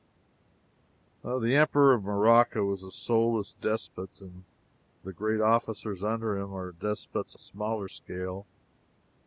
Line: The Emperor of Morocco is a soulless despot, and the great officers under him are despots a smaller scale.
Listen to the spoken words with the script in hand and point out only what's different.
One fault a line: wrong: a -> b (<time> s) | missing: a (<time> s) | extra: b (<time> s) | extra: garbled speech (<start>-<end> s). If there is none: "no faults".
no faults